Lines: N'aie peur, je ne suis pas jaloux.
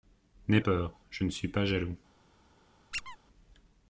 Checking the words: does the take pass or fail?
pass